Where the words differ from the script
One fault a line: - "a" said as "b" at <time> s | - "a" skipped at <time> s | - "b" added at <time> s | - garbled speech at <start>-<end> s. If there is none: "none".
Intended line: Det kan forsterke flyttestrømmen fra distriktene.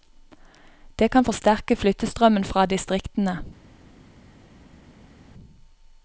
none